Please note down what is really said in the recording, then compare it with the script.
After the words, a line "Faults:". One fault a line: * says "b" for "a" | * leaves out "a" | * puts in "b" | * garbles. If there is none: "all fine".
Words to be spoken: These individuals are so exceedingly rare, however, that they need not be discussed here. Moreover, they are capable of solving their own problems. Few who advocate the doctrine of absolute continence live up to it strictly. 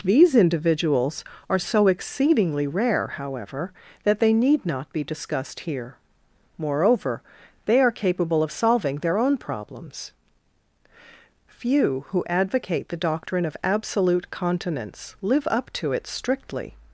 These individuals are so exceedingly rare, however, that they need not be discussed here. Moreover, they are capable of solving their own problems. Few who advocate the doctrine of absolute continence live up to it strictly.
Faults:
all fine